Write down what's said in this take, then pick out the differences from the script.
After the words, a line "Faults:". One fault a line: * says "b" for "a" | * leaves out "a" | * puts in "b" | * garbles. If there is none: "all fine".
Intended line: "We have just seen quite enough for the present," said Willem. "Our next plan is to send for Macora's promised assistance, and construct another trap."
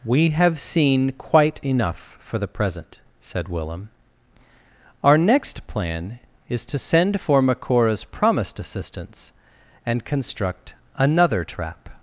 "We have seen quite enough for the present," said Willem. "Our next plan is to send for Macora's promised assistance, and construct another trap."
Faults:
* leaves out "just"